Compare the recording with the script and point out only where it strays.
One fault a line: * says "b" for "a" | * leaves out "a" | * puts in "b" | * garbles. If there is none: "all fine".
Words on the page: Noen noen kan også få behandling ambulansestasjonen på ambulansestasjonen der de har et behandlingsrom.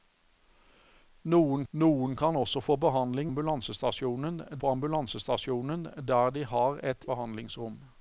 all fine